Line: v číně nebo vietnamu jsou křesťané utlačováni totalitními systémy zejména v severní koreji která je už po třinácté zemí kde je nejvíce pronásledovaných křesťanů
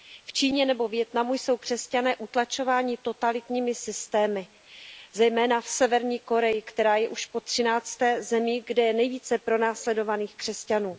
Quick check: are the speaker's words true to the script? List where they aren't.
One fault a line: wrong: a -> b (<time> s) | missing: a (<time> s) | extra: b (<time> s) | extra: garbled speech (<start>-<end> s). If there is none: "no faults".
no faults